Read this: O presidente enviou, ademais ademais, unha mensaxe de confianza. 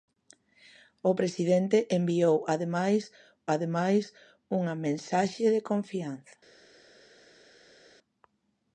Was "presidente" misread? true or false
false